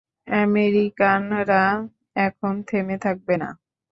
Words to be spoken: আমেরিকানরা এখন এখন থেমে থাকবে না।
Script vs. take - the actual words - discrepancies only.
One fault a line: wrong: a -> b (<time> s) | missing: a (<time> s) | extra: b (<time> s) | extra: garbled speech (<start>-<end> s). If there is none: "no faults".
missing: এখন (2.5 s)